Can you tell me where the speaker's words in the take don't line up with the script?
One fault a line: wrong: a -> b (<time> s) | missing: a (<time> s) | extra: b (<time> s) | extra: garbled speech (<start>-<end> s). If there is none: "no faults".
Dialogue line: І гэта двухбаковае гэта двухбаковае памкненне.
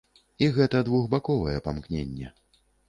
missing: гэта двухбаковае (1.6 s)